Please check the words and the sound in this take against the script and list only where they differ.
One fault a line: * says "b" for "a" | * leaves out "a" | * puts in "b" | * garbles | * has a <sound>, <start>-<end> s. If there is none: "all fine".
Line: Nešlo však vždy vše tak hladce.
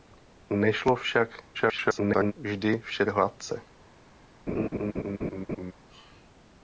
* garbles
* leaves out "tak"
* has a laugh, 4.5-5.7 s